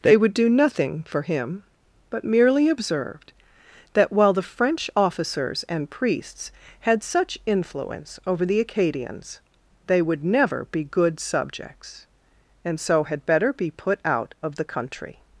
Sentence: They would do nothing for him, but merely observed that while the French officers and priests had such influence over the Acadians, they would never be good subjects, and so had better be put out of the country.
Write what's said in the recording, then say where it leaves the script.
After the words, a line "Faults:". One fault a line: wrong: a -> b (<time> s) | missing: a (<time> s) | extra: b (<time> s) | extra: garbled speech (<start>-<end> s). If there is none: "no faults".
They would do nothing for him, but merely observed that while the French officers and priests had such influence over the Acadians, they would never be good subjects, and so had better be put out of the country.
Faults:
no faults